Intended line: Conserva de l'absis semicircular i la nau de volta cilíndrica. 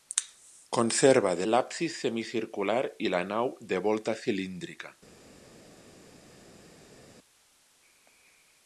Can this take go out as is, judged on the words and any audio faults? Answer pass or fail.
pass